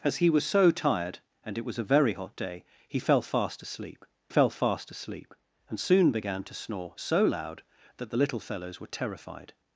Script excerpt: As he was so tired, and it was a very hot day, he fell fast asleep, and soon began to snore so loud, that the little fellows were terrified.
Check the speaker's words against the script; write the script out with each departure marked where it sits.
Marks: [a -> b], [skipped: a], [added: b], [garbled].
As he was so tired, and it was a very hot day, he fell fast asleep, [added: fell fast asleep] and soon began to snore so loud, that the little fellows were terrified.